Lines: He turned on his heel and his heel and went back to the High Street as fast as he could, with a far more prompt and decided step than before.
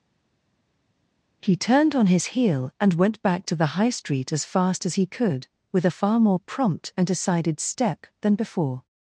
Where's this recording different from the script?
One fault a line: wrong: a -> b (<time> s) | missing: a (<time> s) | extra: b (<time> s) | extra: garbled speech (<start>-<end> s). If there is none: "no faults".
missing: his heel and (2.9 s)